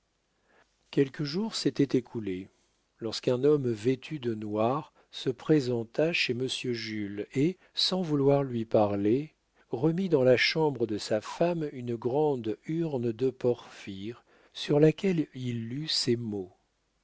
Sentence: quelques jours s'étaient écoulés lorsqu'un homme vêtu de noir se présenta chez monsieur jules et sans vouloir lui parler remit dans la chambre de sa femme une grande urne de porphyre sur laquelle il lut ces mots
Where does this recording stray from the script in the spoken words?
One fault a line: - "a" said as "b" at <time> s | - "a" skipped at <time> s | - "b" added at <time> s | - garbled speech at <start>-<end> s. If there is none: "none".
none